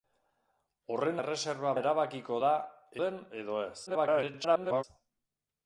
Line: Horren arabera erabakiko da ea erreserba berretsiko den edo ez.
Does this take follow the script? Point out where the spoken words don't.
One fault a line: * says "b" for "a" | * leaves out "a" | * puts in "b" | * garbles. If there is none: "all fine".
* says "erreserba" for "arabera"
* leaves out "ea erreserba berretsiko"
* garbles